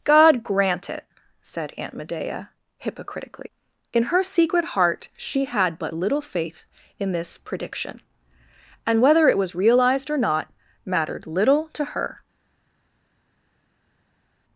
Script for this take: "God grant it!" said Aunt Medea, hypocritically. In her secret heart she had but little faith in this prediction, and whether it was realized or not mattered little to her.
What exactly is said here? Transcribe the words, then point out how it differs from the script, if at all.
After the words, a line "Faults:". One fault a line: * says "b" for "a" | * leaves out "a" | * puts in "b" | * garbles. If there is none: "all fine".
"God grant it!" said Aunt Medea, hypocritically. In her secret heart she had but little faith in this prediction, and whether it was realized or not mattered little to her.
Faults:
all fine